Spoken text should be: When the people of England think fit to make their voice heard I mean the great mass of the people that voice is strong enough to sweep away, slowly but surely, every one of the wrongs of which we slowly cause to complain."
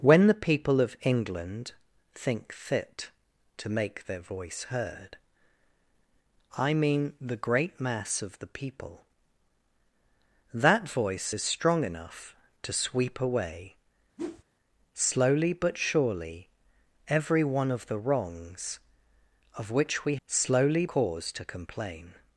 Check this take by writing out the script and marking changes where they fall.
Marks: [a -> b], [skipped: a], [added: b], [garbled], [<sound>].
When the people of England think fit to make their voice heard I mean the great mass of the people that voice is strong enough to sweep away, [whoosh] slowly but surely, every one of the wrongs of which we slowly cause to complain."